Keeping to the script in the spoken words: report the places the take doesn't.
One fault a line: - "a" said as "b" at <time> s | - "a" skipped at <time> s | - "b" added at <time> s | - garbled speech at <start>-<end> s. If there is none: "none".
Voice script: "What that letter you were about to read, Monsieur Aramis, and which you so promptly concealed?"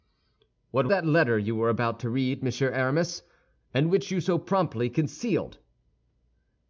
none